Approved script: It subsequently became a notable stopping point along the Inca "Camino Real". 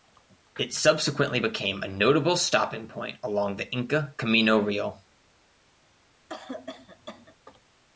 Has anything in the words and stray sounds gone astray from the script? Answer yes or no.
yes